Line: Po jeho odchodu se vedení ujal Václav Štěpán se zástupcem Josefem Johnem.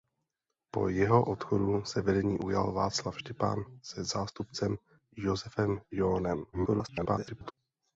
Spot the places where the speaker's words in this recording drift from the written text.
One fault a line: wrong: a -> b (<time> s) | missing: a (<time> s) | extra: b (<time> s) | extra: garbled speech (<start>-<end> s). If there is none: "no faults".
extra: garbled speech (6.5-7.5 s)